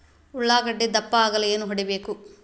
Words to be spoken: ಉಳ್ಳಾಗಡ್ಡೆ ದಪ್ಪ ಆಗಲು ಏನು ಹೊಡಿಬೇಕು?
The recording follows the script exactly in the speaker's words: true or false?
true